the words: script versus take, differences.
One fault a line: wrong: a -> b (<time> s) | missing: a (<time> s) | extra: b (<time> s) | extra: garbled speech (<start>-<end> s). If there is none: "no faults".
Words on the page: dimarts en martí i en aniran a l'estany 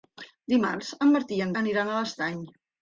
no faults